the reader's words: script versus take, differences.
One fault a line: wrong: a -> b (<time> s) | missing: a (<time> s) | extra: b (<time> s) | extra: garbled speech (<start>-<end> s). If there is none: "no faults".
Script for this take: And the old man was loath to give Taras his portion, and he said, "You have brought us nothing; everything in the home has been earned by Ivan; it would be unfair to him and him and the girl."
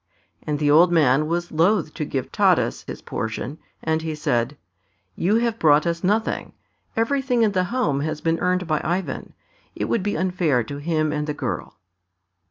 missing: him and (11.3 s)